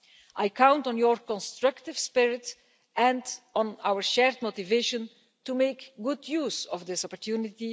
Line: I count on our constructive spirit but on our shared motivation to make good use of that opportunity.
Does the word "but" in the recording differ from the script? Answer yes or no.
yes